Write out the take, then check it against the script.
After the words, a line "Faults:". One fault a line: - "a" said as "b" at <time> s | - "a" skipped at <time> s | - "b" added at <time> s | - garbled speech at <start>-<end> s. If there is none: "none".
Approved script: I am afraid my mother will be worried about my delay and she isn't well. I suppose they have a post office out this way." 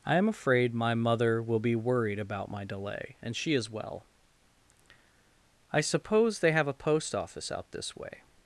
I am afraid my mother will be worried about my delay and she is well. I suppose they have a post office out this way."
Faults:
- "isn't" said as "is" at 3.5 s